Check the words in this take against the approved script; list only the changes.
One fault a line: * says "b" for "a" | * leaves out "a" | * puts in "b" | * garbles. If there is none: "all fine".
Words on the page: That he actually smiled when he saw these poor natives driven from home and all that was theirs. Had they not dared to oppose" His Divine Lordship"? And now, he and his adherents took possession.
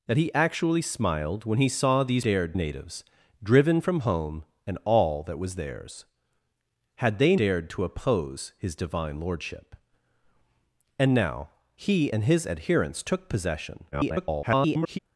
* says "dared" for "poor"
* leaves out "not"
* garbles